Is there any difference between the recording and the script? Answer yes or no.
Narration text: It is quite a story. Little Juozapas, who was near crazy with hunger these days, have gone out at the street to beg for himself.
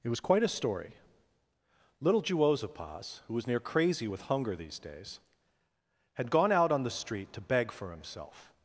yes